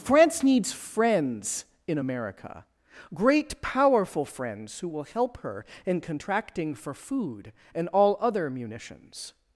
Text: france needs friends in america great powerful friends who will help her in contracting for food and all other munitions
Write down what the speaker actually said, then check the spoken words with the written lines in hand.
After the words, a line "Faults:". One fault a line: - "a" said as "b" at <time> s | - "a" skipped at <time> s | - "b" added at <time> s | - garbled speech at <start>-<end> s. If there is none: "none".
france needs friends in america great powerful friends who will help her in contracting for food and all other munitions
Faults:
none